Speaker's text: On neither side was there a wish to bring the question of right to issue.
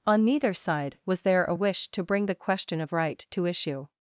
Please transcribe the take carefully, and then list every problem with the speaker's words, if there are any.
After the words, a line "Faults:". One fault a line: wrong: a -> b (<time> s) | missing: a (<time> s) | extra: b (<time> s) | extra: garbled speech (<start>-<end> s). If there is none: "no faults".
On neither side was there a wish to bring the question of right to issue.
Faults:
no faults